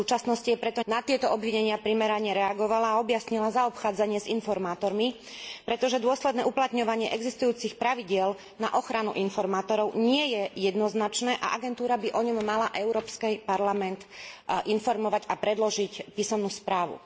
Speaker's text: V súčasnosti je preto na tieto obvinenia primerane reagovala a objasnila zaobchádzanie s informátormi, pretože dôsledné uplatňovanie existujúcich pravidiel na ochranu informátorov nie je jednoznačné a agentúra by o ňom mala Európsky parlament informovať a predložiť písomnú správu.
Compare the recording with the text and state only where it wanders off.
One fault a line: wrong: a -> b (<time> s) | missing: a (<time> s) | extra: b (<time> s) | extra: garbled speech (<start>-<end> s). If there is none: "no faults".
no faults